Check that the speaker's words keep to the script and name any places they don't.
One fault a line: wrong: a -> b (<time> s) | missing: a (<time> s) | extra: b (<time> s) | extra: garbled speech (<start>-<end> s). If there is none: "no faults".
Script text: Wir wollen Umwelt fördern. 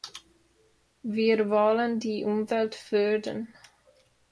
extra: die (2.0 s)